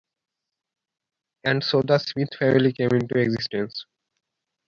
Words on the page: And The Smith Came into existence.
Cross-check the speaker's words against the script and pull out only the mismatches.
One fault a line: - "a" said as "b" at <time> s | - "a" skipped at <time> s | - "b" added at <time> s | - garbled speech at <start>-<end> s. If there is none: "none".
- "so" added at 1.6 s
- "Family" added at 2.4 s